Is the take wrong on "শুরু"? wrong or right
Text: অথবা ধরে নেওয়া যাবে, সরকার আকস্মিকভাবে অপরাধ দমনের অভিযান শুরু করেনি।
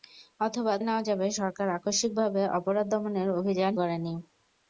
wrong